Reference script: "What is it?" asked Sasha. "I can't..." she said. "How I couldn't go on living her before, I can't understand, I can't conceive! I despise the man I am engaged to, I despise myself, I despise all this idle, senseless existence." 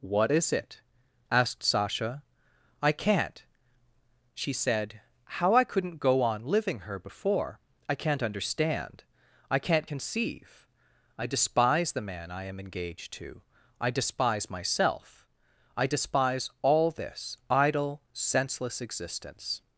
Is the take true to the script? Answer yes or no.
yes